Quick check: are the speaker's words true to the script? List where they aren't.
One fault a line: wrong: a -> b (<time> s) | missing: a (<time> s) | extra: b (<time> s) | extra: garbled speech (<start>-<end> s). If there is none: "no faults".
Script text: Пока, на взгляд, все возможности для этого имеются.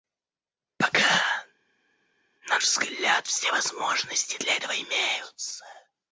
no faults